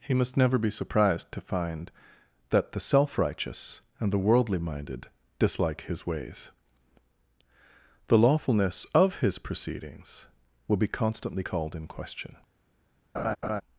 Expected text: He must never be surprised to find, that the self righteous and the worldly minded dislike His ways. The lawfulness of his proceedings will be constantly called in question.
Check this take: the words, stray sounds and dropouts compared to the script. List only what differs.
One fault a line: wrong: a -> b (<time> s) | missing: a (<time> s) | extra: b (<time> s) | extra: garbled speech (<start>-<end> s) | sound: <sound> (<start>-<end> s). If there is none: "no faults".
sound: laugh (13.1-13.6 s)